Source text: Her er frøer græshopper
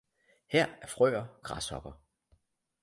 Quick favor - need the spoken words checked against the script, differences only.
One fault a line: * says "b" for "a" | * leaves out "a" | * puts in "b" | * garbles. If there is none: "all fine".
all fine